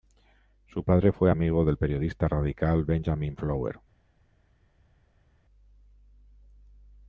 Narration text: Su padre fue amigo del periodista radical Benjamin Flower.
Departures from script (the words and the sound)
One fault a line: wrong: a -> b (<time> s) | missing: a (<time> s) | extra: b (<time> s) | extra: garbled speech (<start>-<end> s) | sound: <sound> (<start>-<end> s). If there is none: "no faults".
no faults